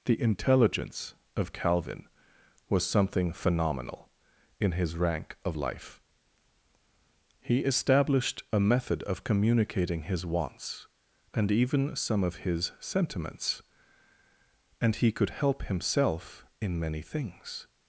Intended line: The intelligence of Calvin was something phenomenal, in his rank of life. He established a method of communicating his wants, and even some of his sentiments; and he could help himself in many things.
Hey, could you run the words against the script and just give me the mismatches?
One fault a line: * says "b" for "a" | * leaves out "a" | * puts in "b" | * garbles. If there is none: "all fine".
all fine